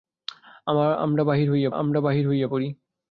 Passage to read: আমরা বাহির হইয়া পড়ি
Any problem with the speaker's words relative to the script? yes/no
yes